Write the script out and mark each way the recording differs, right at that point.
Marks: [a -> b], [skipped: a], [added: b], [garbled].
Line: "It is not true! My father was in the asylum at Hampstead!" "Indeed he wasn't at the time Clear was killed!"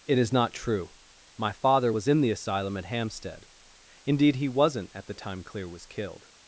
"It is not true! My father was in the asylum at Hampstead!" "Indeed he wasn't at the time Clear was killed!"